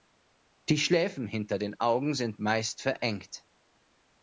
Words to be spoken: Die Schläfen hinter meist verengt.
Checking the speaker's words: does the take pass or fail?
fail